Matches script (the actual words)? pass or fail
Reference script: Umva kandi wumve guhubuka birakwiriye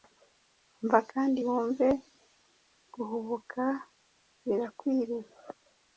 pass